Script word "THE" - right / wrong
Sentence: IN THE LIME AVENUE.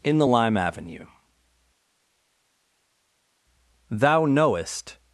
right